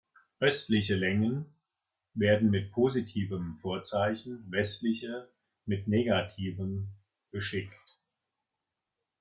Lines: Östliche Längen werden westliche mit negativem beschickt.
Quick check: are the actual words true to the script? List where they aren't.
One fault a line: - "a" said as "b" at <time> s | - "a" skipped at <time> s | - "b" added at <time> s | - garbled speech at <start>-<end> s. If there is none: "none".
- "mit positivem Vorzeichen" added at 2.5 s